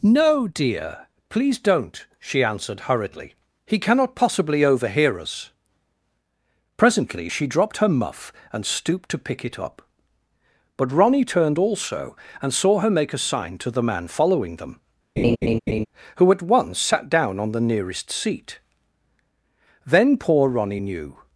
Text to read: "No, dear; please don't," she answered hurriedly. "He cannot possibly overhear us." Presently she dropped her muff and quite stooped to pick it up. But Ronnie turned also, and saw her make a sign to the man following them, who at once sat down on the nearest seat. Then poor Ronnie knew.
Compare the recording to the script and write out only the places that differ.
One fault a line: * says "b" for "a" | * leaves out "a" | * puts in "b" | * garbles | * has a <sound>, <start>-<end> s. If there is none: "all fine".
* leaves out "quite"
* has a laugh, 15.2-15.9 s